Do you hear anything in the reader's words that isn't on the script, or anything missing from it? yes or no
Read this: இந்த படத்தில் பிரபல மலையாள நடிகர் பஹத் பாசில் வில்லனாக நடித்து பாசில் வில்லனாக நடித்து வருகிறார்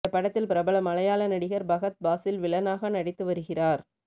yes